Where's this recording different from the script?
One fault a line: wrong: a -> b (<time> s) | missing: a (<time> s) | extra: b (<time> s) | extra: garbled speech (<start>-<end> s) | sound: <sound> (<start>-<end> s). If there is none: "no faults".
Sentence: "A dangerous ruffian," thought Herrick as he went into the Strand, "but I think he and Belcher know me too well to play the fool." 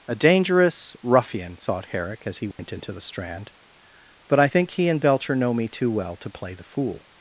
sound: dropout (2.5-2.6 s)